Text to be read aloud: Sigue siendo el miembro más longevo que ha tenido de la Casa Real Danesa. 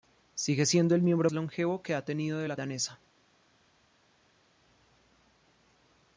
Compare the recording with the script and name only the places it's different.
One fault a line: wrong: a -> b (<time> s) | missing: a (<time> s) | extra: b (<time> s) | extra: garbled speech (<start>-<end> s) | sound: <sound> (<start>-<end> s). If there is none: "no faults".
missing: más (1.3 s)
missing: Casa Real (2.5 s)